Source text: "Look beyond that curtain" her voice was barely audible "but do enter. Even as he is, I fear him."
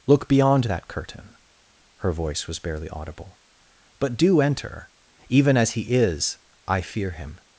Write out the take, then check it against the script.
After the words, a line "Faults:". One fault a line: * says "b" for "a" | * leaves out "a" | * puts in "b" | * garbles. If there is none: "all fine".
"Look beyond that curtain" her voice was barely audible "but do enter. Even as he is, I fear him."
Faults:
all fine